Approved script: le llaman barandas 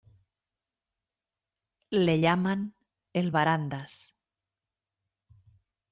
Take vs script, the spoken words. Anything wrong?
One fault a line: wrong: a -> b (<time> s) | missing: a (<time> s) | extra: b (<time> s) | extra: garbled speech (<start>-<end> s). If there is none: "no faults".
extra: el (3.1 s)